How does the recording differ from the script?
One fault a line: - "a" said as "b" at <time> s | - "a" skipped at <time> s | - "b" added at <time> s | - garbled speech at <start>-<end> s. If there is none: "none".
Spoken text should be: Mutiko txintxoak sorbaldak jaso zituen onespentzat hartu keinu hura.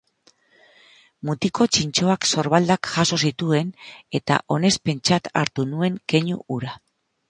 - "eta" added at 4.2 s
- "nuen" added at 5.7 s